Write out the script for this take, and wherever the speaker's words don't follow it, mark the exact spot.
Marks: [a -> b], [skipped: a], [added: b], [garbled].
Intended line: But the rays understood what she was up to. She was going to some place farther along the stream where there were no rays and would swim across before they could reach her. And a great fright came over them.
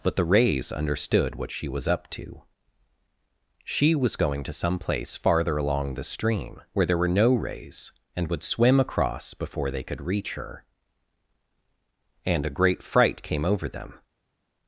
But the rays understood what she was up to. She was going to some place farther along the stream where there were no rays and would swim across before they could reach her. And a great fright came over them.